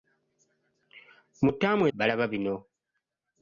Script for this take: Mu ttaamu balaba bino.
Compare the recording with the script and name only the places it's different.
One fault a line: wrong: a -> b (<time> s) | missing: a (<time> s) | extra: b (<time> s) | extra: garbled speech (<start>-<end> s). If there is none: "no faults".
no faults